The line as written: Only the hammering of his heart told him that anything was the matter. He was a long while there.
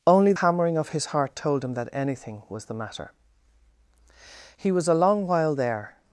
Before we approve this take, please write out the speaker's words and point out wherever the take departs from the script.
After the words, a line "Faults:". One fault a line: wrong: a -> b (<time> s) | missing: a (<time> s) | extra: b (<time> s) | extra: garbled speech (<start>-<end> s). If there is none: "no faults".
Only hammering of his heart told him that anything was the matter. He was a long while there.
Faults:
missing: the (0.3 s)